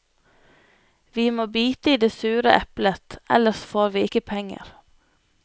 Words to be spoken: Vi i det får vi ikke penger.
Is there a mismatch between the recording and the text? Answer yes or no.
yes